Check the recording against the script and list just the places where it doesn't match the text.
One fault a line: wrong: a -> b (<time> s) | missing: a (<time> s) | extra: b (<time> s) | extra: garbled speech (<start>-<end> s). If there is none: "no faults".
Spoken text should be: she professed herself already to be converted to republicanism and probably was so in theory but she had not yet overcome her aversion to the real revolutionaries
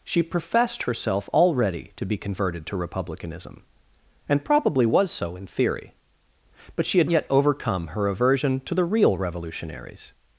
missing: not (7.1 s)